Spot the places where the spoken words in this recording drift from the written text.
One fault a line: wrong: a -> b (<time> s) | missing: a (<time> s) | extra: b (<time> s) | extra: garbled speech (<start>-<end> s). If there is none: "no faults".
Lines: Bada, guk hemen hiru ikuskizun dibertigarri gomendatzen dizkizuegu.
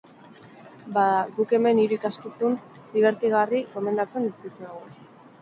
no faults